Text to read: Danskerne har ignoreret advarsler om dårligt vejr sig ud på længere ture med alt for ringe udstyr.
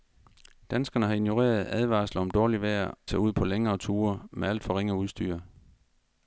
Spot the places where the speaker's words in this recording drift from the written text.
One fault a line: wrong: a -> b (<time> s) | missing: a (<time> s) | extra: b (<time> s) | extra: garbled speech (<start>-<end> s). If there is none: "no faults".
no faults